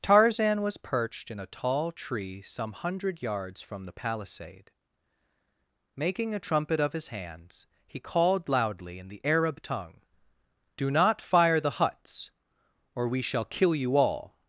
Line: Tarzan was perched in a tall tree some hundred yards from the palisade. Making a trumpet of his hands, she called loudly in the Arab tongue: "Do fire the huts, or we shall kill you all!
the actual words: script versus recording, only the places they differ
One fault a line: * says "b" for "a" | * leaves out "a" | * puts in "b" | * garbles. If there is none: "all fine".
* says "he" for "she"
* puts in "not"